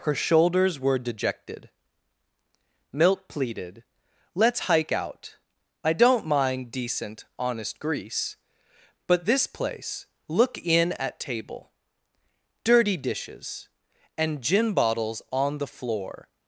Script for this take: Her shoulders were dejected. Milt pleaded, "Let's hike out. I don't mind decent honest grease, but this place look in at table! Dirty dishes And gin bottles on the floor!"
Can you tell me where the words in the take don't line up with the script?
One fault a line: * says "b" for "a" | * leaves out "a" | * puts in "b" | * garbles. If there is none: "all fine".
all fine